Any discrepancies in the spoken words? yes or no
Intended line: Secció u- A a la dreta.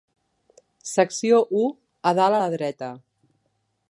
yes